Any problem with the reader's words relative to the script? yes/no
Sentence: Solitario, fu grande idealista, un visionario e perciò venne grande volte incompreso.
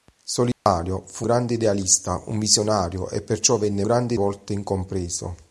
no